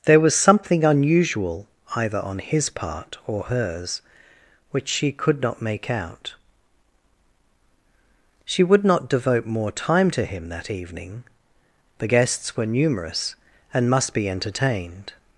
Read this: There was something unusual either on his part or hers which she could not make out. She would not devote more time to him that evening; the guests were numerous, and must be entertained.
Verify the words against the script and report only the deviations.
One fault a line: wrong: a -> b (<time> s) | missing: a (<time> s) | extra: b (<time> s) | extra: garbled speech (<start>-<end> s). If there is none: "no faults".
no faults